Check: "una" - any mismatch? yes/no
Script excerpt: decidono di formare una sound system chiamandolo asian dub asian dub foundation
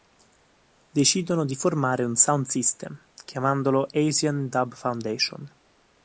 yes